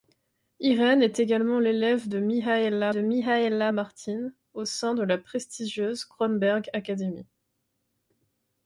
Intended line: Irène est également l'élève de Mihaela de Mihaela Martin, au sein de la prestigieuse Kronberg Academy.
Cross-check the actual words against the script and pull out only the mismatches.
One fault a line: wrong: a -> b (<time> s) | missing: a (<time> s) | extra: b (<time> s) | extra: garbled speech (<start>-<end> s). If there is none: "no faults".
no faults